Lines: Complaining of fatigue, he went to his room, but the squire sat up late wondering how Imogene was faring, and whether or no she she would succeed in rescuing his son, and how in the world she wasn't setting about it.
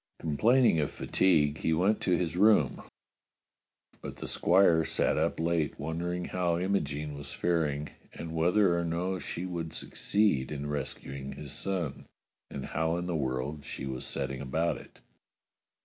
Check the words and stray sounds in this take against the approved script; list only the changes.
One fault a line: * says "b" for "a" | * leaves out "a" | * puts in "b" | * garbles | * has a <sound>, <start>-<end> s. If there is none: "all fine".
* leaves out "she"
* says "was" for "wasn't"